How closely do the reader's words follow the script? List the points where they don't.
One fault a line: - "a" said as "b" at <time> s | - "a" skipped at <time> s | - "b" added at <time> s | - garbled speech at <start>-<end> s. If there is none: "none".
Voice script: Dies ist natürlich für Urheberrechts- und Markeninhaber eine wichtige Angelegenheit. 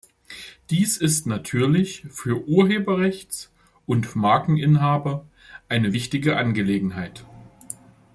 none